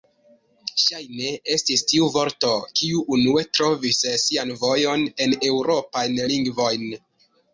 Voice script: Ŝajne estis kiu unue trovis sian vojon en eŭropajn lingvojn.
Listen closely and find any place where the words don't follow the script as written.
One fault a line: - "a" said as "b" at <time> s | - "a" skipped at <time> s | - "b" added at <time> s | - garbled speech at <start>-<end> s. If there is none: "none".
- "tiu vorto" added at 1.9 s